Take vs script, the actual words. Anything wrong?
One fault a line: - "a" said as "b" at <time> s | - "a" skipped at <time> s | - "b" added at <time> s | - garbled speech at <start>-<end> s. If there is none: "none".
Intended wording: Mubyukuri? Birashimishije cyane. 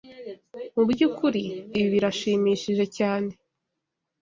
- "Ibi" added at 1.8 s